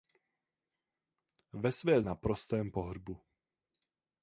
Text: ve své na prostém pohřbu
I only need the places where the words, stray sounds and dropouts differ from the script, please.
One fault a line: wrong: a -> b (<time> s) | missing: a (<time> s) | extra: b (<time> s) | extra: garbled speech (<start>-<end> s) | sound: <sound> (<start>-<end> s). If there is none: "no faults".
no faults